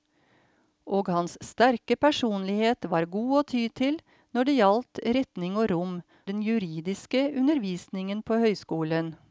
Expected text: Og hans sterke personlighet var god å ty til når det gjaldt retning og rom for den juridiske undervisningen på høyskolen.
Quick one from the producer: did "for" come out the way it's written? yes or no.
no